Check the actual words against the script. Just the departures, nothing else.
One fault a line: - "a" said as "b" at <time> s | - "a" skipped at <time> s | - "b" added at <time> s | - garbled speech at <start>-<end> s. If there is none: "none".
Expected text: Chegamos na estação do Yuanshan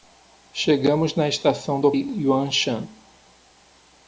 none